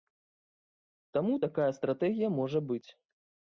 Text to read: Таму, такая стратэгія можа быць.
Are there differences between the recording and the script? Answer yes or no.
no